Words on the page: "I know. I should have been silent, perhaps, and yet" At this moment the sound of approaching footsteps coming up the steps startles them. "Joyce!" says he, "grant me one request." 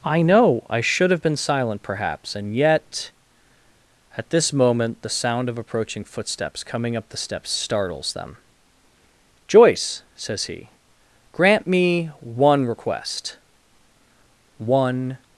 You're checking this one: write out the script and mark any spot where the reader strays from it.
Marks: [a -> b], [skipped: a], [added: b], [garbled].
"I know. I should have been silent, perhaps, and yet" At this moment the sound of approaching footsteps coming up the steps startles them. "Joyce!" says he, "grant me one request." [added: One]